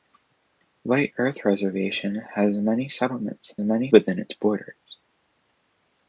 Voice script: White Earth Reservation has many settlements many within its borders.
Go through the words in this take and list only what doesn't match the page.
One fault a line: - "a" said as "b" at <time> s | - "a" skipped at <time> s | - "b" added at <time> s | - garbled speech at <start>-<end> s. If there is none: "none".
none